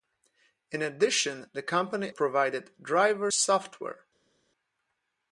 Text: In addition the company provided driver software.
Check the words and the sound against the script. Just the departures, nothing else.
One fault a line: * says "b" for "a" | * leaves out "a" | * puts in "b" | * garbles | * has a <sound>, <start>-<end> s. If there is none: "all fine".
all fine